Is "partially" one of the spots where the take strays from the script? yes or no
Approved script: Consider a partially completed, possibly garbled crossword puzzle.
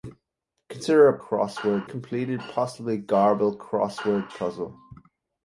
yes